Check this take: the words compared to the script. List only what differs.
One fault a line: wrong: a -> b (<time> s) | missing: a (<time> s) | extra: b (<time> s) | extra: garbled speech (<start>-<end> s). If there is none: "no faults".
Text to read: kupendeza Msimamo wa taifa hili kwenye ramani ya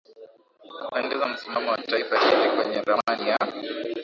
no faults